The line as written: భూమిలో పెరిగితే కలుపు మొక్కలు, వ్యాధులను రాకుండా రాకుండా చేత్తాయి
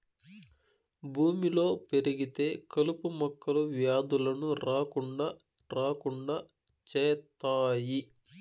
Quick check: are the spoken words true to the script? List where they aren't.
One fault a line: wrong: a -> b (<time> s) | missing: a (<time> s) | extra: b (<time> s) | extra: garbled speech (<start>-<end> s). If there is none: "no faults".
no faults